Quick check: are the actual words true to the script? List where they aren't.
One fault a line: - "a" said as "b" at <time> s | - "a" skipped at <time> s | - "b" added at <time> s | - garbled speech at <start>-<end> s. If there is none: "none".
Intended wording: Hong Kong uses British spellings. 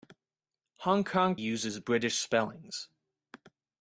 none